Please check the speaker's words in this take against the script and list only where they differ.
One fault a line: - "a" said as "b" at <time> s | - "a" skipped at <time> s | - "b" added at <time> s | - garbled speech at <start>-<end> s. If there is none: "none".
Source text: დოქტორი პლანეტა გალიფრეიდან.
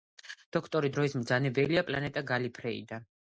- "დროის მბრძანებელია" added at 0.9 s